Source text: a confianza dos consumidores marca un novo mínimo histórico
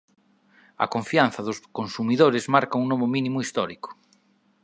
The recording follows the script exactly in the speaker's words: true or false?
true